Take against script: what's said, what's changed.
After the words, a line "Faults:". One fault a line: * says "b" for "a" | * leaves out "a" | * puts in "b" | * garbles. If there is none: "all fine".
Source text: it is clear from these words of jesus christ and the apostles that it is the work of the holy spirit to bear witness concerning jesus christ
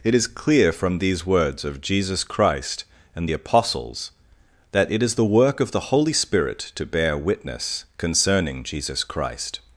it is clear from these words of jesus christ and the apostles that it is the work of the holy spirit to bear witness concerning jesus christ
Faults:
all fine